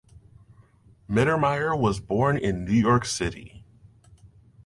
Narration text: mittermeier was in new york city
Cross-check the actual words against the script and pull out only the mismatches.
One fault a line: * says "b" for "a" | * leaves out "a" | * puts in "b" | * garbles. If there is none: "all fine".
* puts in "born"